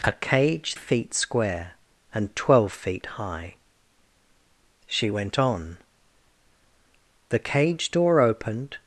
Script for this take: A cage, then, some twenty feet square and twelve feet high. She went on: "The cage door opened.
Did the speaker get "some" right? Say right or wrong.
wrong